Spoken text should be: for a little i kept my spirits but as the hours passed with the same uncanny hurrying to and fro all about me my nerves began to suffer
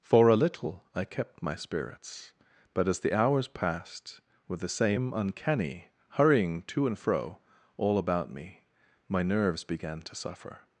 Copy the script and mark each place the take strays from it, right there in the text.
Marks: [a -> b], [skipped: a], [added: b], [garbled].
for a little i kept my spirits but as the hours passed with the same uncanny hurrying to and fro all about me my nerves began to suffer